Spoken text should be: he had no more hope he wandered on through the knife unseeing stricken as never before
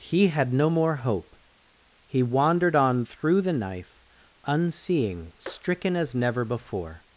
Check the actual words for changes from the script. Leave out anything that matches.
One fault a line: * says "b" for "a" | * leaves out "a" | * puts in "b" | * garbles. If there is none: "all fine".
all fine